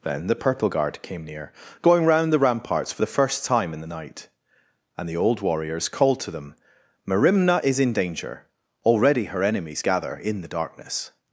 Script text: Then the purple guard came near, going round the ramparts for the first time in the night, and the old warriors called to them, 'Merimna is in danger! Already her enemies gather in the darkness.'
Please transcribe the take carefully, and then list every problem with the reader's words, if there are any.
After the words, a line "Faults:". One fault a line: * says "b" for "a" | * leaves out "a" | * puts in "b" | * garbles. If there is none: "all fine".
Then the purple guard came near, going round the ramparts for the first time in the night, and the old warriors called to them, 'Merimna is in danger! Already her enemies gather in the darkness.'
Faults:
all fine